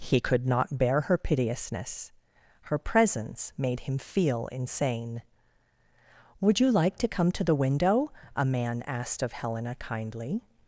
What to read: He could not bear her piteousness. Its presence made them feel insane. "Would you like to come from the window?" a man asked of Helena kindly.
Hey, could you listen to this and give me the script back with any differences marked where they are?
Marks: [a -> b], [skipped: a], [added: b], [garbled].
He could not bear her piteousness. [Its -> Her] presence made [them -> him] feel insane. "Would you like to come [from -> to] the window?" a man asked of Helena kindly.